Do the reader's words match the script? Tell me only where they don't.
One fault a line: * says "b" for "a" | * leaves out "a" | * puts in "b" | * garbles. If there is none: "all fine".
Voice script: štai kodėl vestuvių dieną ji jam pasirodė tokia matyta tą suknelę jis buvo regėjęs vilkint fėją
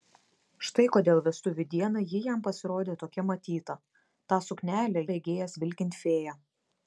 * leaves out "jis buvo"